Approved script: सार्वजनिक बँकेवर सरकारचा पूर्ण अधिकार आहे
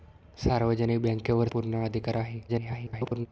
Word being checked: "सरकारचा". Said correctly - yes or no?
no